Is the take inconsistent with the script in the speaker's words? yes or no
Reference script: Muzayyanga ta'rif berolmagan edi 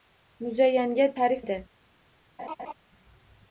yes